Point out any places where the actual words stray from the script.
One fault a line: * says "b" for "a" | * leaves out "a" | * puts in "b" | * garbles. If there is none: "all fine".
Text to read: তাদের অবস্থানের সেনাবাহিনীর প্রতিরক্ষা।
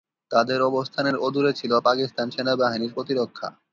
* puts in "অদূরে ছিল পাকিস্তান"